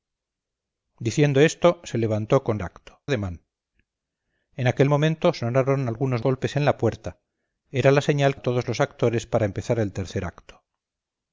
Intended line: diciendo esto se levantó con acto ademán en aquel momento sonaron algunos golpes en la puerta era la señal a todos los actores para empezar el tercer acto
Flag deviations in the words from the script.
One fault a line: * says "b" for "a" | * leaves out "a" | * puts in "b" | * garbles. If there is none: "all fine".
all fine